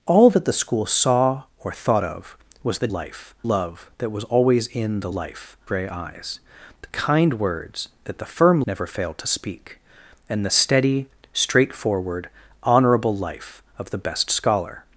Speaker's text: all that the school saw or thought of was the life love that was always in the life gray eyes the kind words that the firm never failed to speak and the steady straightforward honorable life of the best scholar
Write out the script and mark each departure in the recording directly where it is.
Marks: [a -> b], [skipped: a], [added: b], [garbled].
all that the school saw or thought of was the life love that was always in the life gray eyes the kind words that the firm never failed to speak and the steady straightforward honorable life of the best scholar